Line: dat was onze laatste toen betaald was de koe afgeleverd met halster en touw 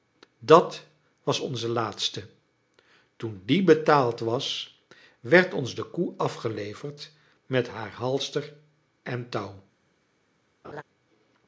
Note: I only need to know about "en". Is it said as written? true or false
true